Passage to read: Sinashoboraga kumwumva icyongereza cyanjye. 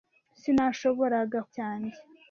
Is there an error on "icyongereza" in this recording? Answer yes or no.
yes